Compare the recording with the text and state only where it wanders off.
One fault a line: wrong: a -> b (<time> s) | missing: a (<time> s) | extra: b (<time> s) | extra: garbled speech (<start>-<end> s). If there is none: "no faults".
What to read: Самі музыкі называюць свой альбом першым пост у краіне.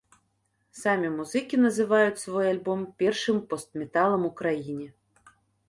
extra: металам (3.9 s)